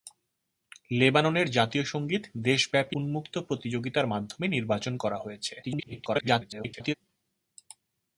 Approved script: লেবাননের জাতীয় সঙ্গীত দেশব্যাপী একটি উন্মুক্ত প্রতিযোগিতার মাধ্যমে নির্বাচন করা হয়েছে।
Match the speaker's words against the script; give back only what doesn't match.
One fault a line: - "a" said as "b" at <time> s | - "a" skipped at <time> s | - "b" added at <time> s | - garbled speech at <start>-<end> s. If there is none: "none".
- "একটি" skipped at 3.0 s
- garbled speech at 5.6-6.9 s